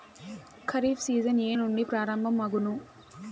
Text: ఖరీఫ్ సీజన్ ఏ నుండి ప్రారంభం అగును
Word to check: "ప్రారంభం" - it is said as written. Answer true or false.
true